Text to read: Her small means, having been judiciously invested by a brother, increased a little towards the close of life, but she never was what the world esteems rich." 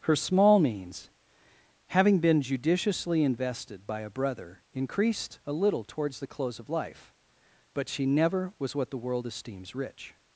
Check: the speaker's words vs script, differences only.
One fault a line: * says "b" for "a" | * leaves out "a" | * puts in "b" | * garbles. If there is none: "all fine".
all fine